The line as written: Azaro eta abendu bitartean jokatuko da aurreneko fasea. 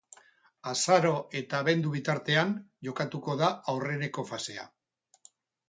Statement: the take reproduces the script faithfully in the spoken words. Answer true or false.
true